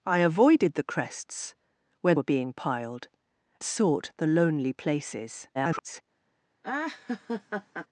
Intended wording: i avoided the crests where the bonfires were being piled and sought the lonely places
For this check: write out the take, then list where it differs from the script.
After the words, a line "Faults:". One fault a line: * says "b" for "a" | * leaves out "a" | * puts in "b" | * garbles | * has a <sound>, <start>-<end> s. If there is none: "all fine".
i avoided the crests where were being piled sought the lonely places [garbled]
Faults:
* leaves out "the bonfires"
* leaves out "and"
* garbles
* has a laugh, 6.6-7.9 s